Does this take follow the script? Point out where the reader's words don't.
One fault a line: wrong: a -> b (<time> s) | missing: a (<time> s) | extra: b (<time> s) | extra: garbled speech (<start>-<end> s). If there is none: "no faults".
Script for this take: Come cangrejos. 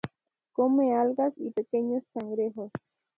extra: algas y pequeños (0.9 s)